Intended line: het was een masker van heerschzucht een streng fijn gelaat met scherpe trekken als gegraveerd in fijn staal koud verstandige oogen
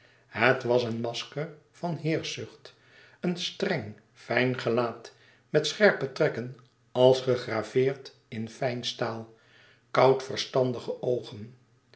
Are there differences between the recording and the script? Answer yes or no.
no